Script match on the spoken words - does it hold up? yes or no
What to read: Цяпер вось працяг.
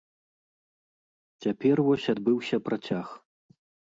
no